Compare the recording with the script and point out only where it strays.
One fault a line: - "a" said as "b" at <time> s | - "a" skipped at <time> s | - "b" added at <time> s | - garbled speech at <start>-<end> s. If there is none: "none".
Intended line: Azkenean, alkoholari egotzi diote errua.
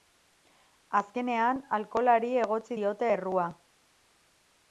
none